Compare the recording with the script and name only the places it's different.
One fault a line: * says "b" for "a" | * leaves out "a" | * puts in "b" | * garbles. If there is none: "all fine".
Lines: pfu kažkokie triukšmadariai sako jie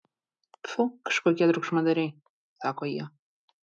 all fine